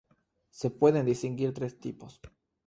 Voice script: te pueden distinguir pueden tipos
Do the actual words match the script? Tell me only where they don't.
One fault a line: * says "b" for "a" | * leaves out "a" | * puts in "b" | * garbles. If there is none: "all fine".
* says "se" for "te"
* says "tres" for "pueden"